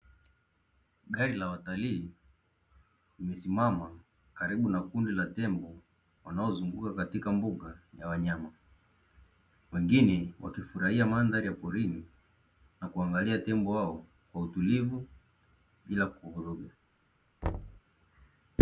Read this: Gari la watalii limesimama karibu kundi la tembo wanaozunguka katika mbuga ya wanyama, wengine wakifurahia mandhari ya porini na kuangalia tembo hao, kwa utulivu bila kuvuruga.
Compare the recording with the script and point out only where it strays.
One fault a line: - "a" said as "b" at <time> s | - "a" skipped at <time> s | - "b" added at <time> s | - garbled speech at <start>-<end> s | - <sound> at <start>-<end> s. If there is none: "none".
- "na" added at 4.7 s
- thud at 17.4-17.8 s